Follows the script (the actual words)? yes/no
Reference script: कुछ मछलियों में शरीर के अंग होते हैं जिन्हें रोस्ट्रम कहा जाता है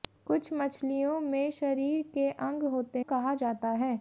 no